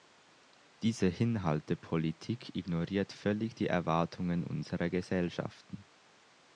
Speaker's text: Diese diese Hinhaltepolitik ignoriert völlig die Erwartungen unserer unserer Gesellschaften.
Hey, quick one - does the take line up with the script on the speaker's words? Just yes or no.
no